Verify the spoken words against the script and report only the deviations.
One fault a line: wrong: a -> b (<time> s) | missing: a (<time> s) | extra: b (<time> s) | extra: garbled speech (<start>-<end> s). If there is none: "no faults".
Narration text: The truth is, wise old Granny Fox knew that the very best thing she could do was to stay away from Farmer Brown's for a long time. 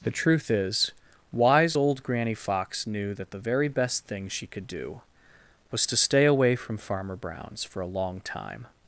no faults